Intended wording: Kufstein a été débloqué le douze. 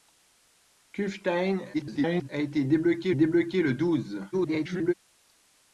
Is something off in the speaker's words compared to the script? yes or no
yes